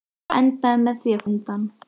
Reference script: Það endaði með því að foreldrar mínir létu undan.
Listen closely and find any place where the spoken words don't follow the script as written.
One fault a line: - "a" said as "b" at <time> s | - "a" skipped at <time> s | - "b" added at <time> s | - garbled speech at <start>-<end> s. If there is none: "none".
- "foreldrar mínir létu" skipped at 1.3 s